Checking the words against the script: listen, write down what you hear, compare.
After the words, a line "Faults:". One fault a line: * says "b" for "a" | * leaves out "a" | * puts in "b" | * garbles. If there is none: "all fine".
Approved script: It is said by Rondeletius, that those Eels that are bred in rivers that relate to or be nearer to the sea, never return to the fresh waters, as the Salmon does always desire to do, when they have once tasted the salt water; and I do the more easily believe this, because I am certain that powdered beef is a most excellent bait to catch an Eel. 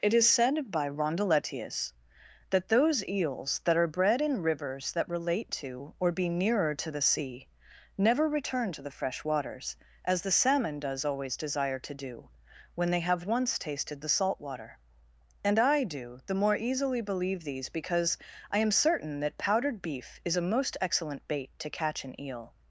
It is said by Rondeletius, that those Eels that are bred in rivers that relate to or be nearer to the sea, never return to the fresh waters, as the Salmon does always desire to do, when they have once tasted the salt water; and I do the more easily believe these, because I am certain that powdered beef is a most excellent bait to catch an Eel.
Faults:
* says "these" for "this"